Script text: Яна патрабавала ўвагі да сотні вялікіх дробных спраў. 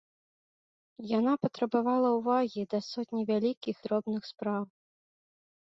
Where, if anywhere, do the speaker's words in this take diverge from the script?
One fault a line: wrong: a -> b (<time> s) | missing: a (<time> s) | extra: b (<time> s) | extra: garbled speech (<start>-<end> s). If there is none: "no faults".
no faults